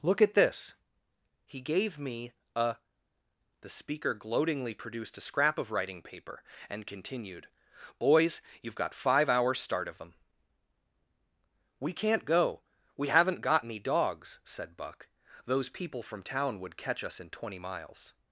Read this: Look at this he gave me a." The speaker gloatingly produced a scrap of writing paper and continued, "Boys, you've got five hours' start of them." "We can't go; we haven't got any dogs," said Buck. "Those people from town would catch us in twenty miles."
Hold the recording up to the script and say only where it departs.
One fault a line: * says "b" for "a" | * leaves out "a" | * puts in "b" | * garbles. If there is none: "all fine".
all fine